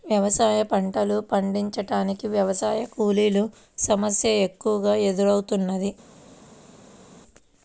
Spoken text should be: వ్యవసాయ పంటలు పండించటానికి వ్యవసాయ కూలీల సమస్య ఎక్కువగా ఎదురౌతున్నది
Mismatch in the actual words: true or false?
false